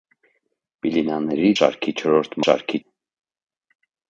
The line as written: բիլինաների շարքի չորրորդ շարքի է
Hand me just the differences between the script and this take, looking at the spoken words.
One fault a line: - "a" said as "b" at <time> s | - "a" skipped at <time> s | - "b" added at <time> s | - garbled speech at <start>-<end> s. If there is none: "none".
none